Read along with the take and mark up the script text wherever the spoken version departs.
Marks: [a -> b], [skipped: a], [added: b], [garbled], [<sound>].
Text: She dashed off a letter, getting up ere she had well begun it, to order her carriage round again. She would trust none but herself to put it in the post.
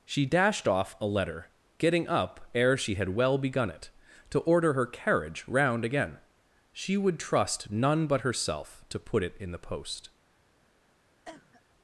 She dashed off a letter, getting up ere she had well begun it, to order her carriage round again. She would trust none but herself to put it in the post. [cough]